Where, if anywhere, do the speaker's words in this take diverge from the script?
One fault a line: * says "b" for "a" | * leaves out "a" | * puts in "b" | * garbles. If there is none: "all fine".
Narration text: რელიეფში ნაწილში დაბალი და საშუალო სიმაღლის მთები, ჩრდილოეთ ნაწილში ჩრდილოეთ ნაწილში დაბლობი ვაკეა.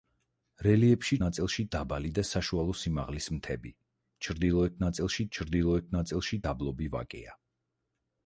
all fine